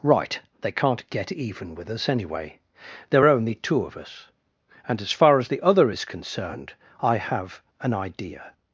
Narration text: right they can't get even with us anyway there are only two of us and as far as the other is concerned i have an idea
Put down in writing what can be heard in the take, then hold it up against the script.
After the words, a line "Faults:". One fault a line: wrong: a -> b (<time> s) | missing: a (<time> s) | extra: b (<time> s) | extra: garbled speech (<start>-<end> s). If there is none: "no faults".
right they can't get even with us anyway there are only two of us and as far as the other is concerned i have an idea
Faults:
no faults